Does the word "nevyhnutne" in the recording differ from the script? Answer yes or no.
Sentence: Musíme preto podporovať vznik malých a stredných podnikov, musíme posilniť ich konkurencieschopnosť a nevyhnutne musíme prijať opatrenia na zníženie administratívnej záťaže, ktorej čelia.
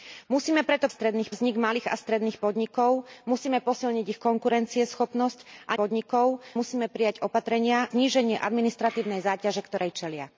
yes